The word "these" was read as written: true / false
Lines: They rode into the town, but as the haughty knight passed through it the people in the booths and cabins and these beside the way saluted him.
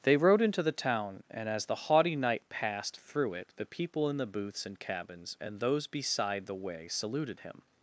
false